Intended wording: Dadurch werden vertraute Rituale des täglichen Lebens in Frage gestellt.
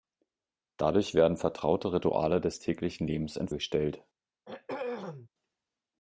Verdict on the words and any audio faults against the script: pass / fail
fail